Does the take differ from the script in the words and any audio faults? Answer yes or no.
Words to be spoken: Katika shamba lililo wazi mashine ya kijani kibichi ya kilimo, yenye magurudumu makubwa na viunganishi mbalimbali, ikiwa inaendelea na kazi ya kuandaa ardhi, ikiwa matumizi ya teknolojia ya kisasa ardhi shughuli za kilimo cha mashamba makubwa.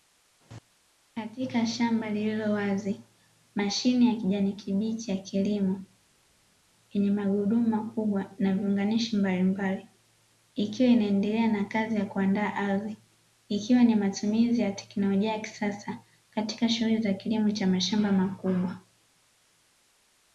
yes